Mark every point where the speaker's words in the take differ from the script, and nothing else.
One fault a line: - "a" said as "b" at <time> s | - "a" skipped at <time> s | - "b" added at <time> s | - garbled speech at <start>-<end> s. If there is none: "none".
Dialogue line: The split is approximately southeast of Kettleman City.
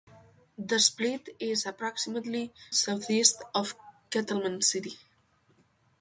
none